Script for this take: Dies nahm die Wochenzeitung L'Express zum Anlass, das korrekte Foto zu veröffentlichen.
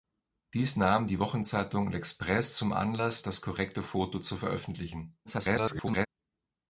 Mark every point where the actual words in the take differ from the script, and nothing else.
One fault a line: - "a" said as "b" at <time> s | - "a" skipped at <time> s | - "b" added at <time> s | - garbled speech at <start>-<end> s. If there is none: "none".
- garbled speech at 5.2-6.1 s